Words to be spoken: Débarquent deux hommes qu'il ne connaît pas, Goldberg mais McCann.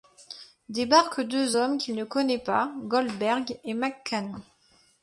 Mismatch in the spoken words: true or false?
true